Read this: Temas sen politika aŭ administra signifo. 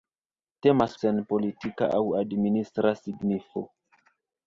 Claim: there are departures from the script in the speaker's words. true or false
false